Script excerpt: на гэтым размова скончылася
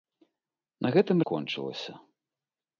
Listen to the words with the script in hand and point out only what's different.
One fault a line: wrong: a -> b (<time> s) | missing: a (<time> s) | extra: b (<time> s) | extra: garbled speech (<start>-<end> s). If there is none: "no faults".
missing: размова (1.2 s)